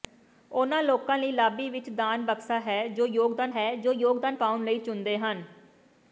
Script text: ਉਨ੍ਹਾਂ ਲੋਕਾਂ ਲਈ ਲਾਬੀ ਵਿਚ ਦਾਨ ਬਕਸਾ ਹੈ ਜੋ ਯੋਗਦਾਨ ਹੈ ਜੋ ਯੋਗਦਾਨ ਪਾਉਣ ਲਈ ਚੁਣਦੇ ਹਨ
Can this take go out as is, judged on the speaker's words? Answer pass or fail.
pass